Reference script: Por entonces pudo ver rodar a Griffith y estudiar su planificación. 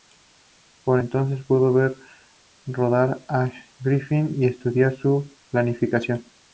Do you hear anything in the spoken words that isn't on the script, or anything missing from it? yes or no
no